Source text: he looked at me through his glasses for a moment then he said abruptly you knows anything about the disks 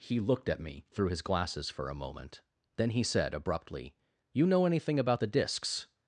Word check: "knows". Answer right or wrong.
wrong